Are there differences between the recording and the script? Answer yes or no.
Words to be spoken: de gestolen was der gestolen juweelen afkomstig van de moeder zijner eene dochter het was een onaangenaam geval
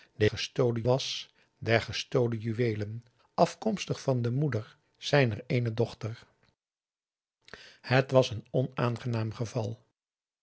no